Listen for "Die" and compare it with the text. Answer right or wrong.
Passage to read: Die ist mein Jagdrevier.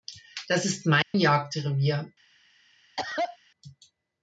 wrong